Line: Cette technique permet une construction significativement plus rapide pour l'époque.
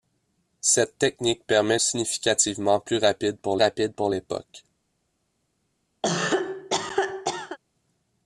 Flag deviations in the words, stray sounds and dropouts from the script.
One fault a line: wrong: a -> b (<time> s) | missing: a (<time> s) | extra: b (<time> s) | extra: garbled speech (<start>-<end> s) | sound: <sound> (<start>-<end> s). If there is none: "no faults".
wrong: une construction significativement plus -> significativement plus rapide pour (1.8 s)
sound: cough (6.0-7.6 s)